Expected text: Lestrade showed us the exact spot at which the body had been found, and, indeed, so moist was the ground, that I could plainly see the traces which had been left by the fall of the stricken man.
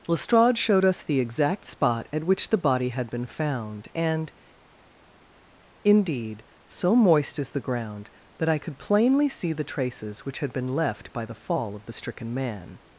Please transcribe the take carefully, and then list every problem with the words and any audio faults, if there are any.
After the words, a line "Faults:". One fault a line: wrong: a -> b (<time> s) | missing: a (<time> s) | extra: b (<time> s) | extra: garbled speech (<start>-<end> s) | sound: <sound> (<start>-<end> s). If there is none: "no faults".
Lestrade showed us the exact spot at which the body had been found, and, indeed, so moist is the ground, that I could plainly see the traces which had been left by the fall of the stricken man.
Faults:
wrong: was -> is (7.4 s)